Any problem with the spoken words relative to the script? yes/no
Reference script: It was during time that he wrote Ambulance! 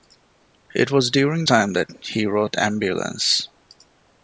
no